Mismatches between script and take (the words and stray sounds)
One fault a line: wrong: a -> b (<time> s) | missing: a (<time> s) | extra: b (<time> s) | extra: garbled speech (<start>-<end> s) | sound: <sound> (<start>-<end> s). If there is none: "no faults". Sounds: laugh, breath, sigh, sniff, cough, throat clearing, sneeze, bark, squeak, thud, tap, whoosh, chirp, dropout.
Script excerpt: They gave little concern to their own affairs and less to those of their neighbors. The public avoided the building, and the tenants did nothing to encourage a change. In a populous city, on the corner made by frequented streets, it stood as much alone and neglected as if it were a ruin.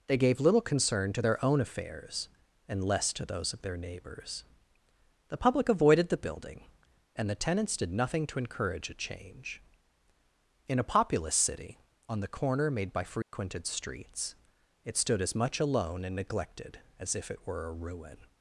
sound: dropout (13.2-13.3 s)